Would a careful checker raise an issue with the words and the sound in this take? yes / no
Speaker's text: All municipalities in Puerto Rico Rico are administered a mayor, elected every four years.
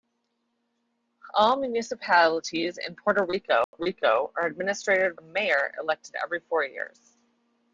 yes